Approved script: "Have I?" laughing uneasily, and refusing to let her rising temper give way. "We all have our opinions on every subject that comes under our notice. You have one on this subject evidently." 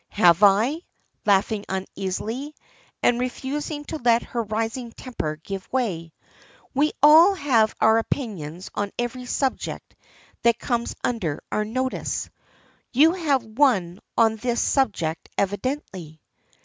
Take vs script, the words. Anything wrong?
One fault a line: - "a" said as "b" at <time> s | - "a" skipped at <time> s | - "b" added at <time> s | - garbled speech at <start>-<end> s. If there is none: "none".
none